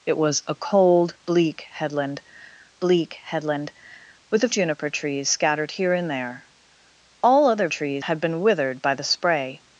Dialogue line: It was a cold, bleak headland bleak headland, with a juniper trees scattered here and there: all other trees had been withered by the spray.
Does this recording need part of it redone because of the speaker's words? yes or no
no